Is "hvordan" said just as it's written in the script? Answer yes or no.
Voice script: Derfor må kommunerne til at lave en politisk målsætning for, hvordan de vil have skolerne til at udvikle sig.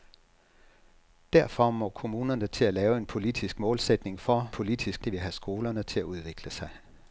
no